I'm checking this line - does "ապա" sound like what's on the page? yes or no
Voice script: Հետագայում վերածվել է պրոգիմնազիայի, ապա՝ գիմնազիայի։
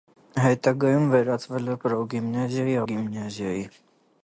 no